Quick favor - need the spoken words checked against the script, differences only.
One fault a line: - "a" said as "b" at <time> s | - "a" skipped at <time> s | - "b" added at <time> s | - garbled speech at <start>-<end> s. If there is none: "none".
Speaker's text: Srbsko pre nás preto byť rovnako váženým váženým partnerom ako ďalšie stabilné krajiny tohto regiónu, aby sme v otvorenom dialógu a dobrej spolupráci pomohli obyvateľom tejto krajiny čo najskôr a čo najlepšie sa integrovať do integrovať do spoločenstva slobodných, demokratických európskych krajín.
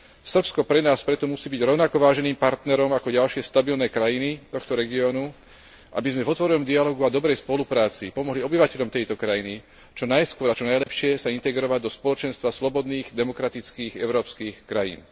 - "musí" added at 1.2 s
- "váženým" skipped at 2.4 s
- "integrovať do" skipped at 11.9 s